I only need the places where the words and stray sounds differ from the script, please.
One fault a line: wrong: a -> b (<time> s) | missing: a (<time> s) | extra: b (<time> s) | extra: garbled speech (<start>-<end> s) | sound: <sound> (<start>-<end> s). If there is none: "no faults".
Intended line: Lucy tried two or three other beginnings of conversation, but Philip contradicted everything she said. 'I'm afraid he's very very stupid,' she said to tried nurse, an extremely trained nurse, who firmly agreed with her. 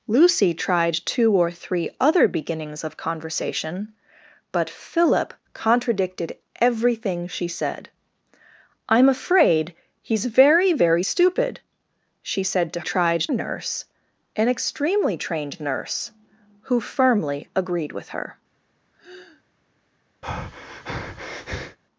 sound: sigh (18.9-19.4 s)
sound: breath (20.2-21.8 s)